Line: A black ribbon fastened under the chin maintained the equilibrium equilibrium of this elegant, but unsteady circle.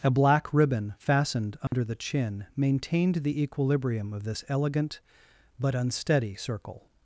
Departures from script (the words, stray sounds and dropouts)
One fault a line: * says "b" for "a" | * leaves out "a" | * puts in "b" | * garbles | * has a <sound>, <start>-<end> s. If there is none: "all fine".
* has a dropout, 1.7-1.7 s
* leaves out "equilibrium"